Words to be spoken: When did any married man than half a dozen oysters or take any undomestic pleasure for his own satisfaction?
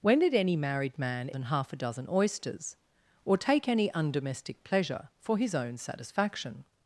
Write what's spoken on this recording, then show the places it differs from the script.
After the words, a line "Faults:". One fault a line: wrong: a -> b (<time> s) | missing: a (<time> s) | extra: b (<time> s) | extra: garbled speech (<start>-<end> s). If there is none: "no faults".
When did any married man than half a dozen oysters or take any undomestic pleasure for his own satisfaction?
Faults:
no faults